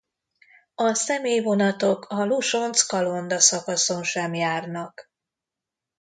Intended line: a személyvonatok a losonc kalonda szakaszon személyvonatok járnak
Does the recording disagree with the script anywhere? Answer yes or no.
yes